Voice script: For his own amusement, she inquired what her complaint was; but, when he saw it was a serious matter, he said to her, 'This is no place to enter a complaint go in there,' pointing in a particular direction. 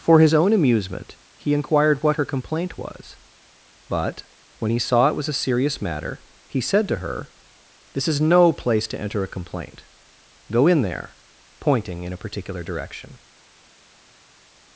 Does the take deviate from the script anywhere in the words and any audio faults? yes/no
yes